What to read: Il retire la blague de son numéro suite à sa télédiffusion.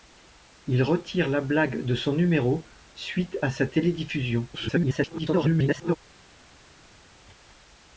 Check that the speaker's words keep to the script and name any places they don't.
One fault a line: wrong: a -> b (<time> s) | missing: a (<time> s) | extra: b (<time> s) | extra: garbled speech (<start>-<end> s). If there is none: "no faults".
extra: garbled speech (4.5-6.0 s)